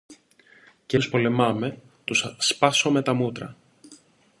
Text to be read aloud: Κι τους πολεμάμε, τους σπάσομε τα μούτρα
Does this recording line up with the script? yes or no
yes